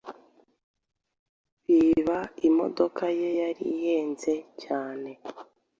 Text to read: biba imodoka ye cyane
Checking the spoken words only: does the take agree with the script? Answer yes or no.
no